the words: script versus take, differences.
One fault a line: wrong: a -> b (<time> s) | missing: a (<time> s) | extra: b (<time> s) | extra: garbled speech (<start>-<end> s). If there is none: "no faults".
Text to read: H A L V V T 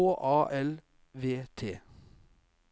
missing: V (1.4 s)